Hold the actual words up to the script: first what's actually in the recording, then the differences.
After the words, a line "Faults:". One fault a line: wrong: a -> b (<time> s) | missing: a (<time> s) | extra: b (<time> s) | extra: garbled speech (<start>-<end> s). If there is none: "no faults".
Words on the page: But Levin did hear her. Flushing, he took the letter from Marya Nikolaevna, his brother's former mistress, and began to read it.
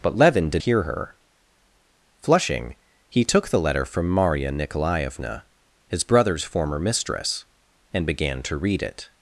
But Levin did hear her. Flushing, he took the letter from Marya Nikolaevna, his brother's former mistress, and began to read it.
Faults:
no faults